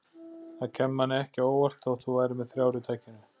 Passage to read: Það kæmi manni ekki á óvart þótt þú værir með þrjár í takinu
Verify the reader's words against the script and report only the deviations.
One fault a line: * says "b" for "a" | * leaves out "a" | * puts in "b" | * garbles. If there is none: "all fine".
all fine